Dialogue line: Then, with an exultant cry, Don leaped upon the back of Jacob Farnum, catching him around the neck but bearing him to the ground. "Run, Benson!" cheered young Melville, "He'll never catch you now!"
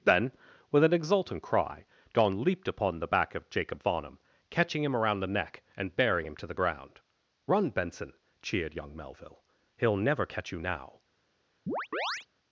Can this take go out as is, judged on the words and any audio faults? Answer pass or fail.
fail